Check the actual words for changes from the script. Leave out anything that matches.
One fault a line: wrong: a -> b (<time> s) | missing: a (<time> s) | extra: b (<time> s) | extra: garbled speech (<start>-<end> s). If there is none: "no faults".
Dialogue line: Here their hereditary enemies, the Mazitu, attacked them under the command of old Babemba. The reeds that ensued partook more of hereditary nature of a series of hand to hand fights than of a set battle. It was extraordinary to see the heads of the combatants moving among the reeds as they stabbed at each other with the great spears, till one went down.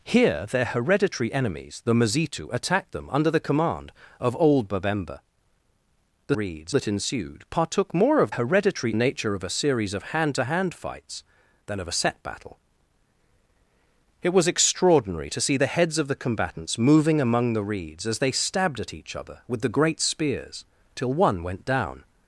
no faults